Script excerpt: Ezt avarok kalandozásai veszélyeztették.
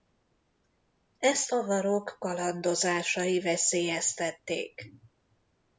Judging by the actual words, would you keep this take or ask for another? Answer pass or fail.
pass